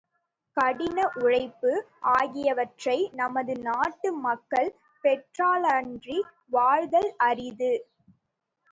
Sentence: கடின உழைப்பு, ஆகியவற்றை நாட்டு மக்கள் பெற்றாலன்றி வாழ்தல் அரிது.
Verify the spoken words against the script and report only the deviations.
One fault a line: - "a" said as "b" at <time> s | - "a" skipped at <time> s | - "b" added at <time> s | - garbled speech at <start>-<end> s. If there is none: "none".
- "நமது" added at 3.1 s